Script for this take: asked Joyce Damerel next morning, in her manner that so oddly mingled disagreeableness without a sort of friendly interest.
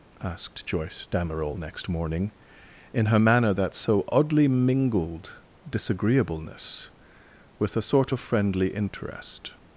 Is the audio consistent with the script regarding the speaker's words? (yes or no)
no